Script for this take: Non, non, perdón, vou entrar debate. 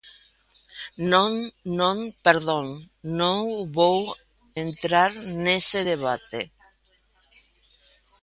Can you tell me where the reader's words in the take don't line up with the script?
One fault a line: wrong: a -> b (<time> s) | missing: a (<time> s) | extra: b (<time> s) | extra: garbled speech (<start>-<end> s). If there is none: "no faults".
extra: non (3.2 s)
extra: nese (5.4 s)